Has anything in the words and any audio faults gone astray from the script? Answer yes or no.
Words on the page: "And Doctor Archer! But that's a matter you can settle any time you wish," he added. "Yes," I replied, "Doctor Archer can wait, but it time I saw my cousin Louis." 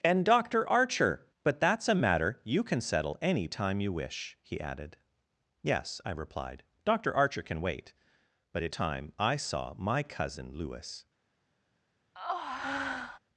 yes